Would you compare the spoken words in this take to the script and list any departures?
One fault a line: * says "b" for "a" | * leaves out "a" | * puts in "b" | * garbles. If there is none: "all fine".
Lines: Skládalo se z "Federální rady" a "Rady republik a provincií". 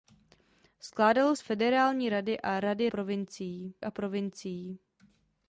* leaves out "se"
* says "provincií" for "republik"